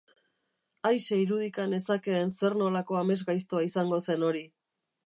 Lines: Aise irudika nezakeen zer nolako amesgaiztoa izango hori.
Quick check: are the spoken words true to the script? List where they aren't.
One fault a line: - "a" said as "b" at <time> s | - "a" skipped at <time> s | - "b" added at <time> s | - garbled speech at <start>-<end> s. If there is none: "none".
- "zen" added at 4.1 s